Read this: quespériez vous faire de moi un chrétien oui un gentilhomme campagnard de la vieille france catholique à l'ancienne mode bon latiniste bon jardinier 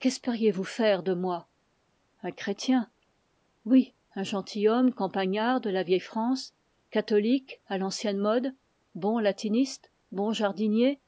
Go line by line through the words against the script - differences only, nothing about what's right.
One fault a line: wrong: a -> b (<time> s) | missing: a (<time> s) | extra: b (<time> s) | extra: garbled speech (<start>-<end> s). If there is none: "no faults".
no faults